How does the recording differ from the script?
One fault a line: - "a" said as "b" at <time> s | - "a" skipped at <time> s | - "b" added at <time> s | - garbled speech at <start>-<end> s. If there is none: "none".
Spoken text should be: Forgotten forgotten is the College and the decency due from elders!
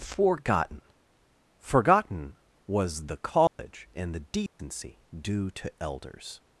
- "is" said as "was" at 2.7 s
- "from" said as "to" at 5.5 s